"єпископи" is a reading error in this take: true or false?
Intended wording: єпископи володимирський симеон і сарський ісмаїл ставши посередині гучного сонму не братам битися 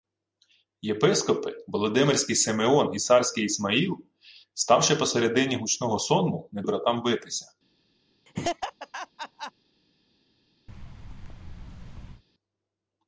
false